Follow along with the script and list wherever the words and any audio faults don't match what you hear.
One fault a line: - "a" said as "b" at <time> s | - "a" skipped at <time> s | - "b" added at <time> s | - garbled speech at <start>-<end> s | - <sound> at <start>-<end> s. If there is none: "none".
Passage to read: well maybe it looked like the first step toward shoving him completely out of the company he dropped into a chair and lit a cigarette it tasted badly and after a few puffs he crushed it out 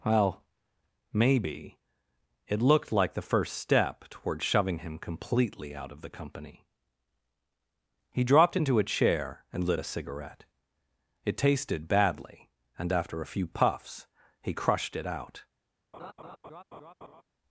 - laugh at 15.9-17.2 s